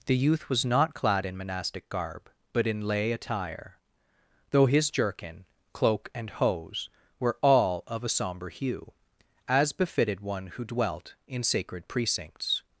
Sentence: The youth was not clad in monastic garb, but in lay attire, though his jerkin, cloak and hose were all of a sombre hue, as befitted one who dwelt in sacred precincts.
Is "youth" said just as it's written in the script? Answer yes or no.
yes